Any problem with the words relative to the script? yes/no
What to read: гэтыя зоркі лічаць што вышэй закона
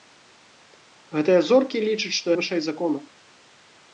no